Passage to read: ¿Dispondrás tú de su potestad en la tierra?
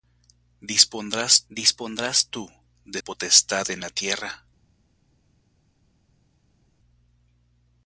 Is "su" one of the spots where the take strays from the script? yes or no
yes